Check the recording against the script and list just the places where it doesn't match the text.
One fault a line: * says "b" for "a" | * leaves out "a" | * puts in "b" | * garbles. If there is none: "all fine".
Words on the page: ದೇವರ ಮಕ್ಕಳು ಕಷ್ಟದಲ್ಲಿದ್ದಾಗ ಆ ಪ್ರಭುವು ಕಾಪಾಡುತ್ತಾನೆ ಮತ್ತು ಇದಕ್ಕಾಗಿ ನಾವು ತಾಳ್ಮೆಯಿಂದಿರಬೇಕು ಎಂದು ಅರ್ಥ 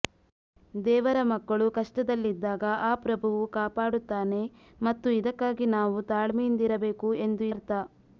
all fine